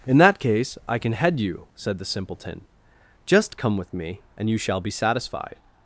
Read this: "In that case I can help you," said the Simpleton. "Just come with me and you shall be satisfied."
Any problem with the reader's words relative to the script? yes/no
yes